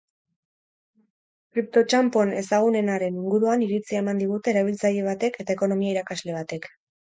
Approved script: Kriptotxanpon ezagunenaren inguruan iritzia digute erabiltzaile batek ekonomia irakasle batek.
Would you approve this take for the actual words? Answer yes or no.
no